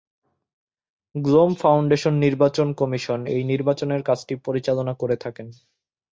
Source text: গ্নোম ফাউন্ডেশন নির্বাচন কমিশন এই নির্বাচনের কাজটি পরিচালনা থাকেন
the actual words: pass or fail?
fail